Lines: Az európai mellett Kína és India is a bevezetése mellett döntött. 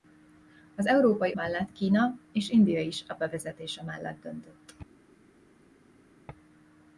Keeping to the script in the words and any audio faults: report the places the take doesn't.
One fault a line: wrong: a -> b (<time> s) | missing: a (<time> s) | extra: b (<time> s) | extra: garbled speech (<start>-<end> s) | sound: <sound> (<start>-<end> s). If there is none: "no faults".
no faults